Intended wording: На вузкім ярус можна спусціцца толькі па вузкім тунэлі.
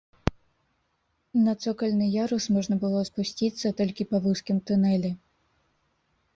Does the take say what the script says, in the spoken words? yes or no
no